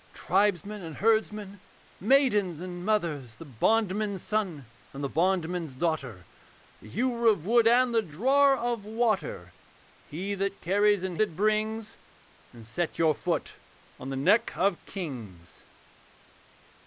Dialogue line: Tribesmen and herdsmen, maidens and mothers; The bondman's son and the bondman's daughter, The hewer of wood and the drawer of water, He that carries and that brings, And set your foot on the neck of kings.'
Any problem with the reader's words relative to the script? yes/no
no